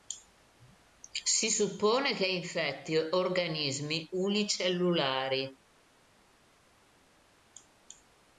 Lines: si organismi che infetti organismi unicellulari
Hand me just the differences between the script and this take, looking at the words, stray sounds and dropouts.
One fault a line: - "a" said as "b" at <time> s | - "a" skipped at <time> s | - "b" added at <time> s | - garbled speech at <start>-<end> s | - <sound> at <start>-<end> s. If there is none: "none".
- "organismi" said as "suppone" at 1.5 s